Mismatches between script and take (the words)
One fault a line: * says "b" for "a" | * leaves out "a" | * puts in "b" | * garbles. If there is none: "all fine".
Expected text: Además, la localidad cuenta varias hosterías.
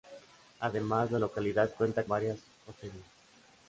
all fine